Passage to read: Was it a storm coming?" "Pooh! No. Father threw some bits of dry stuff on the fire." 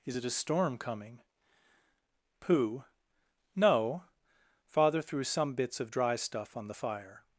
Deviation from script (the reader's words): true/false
true